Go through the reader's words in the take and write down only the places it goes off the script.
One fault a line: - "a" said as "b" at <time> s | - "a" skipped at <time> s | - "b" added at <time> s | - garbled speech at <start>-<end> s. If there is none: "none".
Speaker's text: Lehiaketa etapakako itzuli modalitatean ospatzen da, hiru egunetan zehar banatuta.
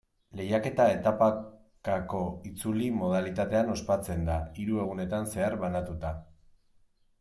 none